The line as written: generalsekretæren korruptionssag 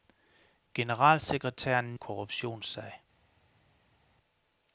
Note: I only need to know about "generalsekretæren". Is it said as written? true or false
true